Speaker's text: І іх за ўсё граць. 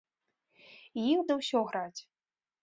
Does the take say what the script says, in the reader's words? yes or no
yes